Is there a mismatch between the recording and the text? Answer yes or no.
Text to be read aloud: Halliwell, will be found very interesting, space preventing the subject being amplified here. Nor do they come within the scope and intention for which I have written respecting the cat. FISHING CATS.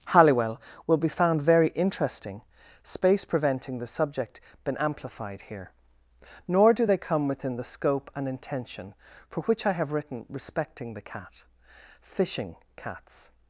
yes